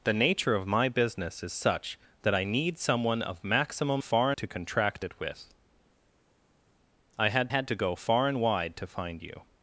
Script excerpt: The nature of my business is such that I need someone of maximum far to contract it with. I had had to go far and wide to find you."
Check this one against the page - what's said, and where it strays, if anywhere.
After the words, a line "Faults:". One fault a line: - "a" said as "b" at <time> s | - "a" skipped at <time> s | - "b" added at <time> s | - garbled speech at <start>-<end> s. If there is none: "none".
The nature of my business is such that I need someone of maximum far to contract it with. I had had to go far and wide to find you."
Faults:
none